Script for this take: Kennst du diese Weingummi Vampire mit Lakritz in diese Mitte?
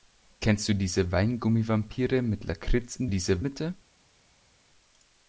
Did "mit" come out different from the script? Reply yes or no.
no